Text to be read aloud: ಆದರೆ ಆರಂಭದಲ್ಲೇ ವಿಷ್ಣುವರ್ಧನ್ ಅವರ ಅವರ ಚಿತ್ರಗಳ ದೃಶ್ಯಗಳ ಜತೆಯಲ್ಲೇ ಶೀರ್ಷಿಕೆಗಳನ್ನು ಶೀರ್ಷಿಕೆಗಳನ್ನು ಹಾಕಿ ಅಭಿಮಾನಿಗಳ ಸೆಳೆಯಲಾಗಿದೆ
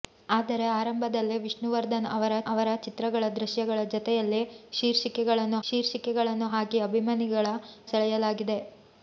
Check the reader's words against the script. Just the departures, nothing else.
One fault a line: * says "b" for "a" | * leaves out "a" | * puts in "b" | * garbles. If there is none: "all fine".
all fine